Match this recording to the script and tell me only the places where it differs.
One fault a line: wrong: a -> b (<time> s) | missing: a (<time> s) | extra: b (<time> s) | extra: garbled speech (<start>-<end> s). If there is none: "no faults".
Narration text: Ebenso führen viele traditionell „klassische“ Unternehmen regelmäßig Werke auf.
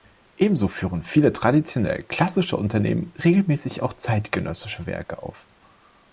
extra: auch zeitgenössische (3.8 s)